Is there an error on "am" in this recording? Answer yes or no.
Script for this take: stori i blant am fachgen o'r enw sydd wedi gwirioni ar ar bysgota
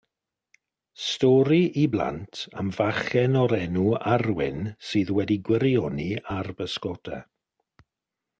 no